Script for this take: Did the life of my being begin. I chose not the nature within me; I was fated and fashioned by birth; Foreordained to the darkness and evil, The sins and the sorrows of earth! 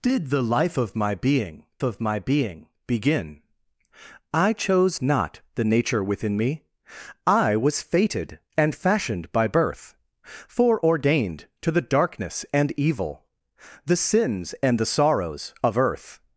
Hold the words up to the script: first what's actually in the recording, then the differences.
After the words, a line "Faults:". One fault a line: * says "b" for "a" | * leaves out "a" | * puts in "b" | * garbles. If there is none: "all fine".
Did the life of my being of my being begin. I chose not the nature within me; I was fated and fashioned by birth; Foreordained to the darkness and evil, The sins and the sorrows of earth!
Faults:
* puts in "of my being"